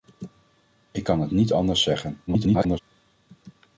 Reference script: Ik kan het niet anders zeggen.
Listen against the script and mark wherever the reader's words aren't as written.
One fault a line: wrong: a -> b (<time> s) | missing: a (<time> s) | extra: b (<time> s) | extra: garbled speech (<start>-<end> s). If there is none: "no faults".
extra: garbled speech (2.3-2.8 s)